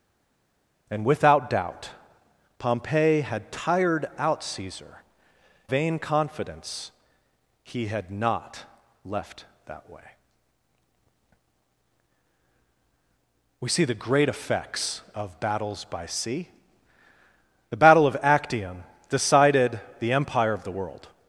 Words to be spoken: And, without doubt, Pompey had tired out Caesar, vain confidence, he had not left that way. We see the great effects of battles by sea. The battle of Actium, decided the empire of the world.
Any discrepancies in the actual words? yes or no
no